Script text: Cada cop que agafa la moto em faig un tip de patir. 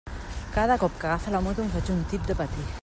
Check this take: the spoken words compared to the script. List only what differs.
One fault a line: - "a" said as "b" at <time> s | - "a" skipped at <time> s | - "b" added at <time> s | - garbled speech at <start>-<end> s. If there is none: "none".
none